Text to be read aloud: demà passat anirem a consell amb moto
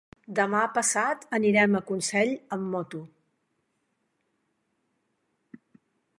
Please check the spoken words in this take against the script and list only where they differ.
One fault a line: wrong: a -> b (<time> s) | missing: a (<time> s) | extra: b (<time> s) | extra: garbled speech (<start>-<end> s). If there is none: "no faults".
no faults